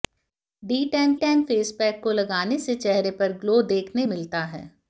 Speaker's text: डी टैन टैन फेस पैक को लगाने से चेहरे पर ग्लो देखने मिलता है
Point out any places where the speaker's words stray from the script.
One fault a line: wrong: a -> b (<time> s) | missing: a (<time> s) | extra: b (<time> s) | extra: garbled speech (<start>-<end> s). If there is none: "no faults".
no faults